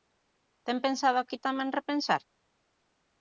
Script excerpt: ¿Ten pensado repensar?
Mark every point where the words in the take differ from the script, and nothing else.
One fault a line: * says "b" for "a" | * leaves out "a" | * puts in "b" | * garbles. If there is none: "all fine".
* puts in "aquí tamén"